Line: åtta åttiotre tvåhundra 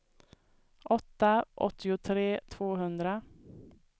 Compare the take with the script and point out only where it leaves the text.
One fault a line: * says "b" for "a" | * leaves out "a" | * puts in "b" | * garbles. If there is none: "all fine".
all fine